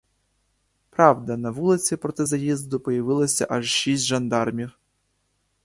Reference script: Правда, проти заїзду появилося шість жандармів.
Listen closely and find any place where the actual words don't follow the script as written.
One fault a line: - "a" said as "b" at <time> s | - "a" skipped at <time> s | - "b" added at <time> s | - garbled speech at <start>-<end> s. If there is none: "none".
- "на вулиці" added at 1.4 s
- "аж" added at 3.5 s